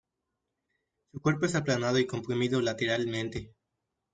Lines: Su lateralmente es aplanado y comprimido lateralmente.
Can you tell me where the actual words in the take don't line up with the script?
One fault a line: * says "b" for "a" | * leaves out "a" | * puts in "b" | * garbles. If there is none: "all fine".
* says "cuerpo" for "lateralmente"